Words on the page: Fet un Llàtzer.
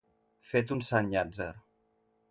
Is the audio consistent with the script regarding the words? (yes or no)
no